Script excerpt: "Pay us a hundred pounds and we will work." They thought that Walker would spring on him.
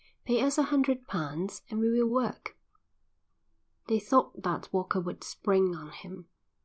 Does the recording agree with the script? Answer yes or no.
yes